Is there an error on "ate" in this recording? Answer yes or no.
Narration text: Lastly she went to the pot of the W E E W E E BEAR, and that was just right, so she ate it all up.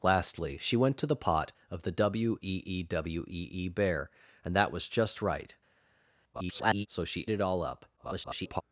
yes